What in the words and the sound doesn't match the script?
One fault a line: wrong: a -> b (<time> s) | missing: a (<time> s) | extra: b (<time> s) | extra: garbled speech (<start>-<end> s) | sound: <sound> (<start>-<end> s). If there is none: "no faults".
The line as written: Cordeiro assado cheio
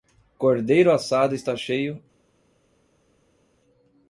extra: está (1.4 s)